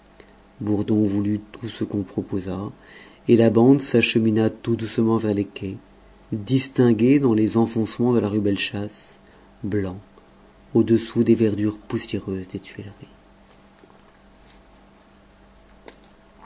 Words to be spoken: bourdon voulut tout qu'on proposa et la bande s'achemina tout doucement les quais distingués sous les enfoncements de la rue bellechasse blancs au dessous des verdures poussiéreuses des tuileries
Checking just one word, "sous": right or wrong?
wrong